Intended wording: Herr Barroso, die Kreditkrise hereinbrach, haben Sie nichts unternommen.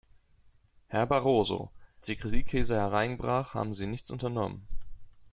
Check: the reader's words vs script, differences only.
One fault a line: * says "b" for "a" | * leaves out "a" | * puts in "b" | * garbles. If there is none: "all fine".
all fine